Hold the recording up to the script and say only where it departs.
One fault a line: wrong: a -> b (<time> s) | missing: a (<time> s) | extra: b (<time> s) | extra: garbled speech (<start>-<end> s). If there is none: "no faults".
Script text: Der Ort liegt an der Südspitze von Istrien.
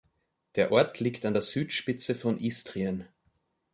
no faults